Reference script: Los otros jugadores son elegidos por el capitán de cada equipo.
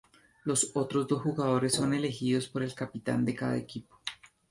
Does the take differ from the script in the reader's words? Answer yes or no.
yes